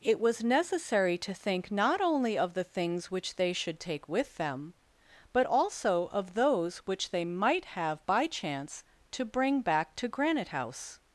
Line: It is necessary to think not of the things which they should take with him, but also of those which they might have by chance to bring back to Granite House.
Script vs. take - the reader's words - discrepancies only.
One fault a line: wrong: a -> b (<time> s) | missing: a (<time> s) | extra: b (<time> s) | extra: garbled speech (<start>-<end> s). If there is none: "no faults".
wrong: is -> was (0.2 s)
extra: only (2.0 s)
wrong: him -> them (4.4 s)